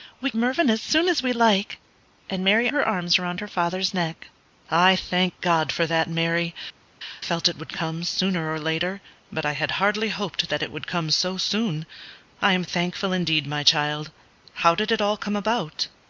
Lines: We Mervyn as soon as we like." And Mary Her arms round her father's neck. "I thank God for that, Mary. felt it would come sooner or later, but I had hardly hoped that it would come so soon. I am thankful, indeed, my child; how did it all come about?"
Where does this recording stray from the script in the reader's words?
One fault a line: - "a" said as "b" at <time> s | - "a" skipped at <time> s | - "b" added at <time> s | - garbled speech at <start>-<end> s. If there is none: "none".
none